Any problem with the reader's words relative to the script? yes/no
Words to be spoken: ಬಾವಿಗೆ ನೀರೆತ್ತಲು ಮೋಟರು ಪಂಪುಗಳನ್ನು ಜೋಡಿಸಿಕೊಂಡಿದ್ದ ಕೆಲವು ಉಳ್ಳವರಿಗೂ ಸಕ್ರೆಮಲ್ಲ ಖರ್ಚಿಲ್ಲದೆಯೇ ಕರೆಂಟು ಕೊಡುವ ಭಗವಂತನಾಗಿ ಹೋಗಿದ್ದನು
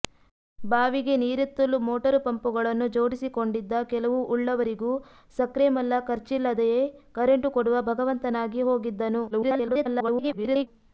yes